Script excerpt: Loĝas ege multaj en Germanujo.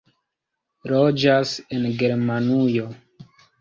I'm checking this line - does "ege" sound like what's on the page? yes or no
no